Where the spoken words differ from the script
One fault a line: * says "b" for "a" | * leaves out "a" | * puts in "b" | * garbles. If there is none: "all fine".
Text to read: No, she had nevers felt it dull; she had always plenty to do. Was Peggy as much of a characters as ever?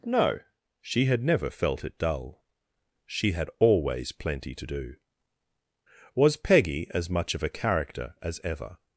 * says "never" for "nevers"
* says "character" for "characters"